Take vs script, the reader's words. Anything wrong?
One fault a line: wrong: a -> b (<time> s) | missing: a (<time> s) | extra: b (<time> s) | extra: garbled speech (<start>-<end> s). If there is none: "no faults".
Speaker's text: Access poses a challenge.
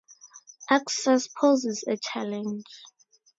no faults